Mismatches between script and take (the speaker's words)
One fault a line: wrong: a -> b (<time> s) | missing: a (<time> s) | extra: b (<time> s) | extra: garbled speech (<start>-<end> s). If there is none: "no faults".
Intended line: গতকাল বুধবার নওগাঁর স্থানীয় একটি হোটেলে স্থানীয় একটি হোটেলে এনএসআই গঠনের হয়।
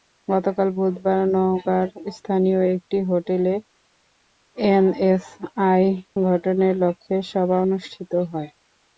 wrong: স্থানীয় একটি হোটেলে এনএসআই গঠনের -> এনএসআই গঠনের লক্ষ্যে সভা অনুষ্ঠিত (4.6 s)